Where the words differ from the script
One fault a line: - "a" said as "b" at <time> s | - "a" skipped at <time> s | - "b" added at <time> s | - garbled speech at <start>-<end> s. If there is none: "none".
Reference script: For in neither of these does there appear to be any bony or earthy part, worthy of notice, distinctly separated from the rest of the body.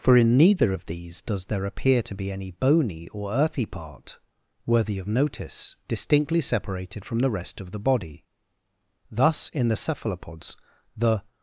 - "Thus in the Cephalopods the" added at 9.1 s